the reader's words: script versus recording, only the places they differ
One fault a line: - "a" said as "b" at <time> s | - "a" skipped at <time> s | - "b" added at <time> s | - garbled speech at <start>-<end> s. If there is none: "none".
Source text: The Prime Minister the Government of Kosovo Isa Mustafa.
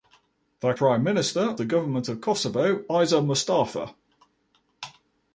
none